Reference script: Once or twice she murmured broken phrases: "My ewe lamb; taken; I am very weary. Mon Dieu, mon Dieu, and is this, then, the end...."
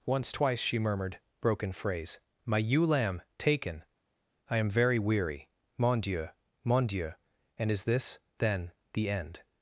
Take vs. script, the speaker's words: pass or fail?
fail